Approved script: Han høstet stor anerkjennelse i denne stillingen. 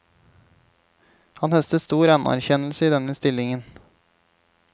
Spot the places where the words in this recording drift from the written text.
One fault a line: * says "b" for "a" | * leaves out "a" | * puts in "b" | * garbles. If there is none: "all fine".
all fine